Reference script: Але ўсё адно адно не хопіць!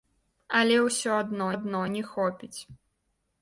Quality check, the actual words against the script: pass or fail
pass